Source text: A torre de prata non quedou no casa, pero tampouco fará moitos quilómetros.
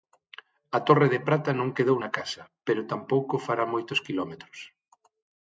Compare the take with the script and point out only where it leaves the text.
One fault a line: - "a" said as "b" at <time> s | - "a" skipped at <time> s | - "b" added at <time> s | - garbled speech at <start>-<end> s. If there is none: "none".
- "no" said as "na" at 2.0 s